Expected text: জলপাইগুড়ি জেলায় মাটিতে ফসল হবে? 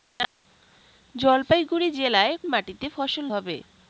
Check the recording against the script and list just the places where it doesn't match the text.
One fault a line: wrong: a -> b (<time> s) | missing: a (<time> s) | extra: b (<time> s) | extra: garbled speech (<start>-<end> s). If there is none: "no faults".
no faults